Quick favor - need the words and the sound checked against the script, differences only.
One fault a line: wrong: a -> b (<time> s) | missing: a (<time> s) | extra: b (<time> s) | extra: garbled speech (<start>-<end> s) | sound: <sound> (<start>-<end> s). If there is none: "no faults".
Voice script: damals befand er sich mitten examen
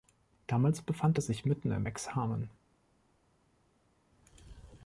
extra: im (1.7 s)